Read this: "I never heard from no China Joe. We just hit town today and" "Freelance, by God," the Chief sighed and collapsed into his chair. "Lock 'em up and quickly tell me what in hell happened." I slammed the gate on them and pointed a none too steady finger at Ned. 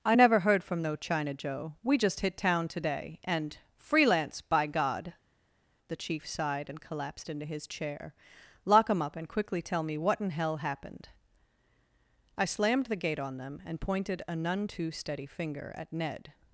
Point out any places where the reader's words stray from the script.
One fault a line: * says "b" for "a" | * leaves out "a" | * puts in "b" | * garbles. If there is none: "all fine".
all fine